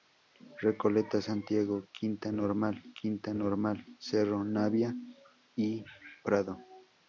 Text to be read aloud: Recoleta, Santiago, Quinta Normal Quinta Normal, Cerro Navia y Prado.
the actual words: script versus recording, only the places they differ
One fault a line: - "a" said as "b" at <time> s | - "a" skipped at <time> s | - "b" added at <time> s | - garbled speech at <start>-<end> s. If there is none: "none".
none